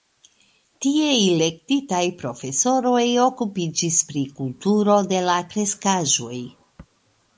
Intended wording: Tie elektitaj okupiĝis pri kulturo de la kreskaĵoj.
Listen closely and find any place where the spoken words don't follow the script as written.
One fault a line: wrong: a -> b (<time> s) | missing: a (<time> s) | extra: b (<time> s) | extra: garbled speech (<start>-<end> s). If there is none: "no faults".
extra: profesoroj (2.2 s)